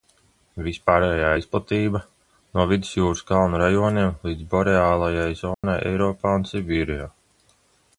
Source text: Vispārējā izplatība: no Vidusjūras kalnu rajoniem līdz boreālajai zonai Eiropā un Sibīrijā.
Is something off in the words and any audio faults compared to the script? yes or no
yes